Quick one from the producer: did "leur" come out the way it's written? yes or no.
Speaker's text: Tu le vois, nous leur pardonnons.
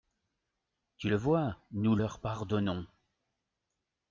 yes